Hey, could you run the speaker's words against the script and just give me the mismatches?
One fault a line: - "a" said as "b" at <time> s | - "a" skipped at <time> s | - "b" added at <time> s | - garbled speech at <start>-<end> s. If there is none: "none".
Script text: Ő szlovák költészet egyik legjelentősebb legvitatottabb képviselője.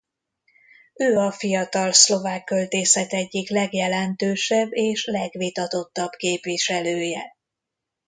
- "a fiatal" added at 1.2 s
- "és" added at 4.7 s